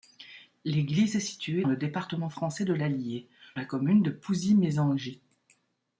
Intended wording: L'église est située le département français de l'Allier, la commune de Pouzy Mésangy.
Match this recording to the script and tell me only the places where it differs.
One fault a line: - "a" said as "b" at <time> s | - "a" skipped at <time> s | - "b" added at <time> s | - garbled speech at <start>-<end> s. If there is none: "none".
none